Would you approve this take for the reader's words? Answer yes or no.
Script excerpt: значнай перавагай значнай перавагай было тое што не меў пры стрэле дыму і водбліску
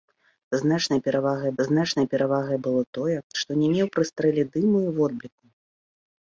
yes